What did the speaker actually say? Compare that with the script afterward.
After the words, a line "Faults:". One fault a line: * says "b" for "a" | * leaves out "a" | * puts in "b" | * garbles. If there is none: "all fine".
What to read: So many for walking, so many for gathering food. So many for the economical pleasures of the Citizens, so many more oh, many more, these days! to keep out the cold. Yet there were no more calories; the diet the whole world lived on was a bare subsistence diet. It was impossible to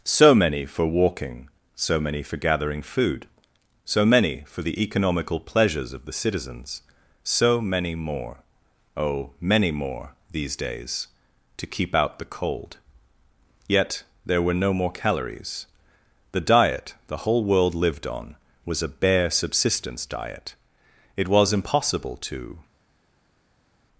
So many for walking, so many for gathering food. So many for the economical pleasures of the Citizens, so many more oh, many more, these days! to keep out the cold. Yet there were no more calories; the diet the whole world lived on was a bare subsistence diet. It was impossible to
Faults:
all fine